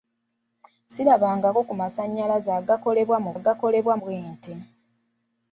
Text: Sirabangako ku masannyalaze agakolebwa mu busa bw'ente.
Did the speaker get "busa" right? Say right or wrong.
wrong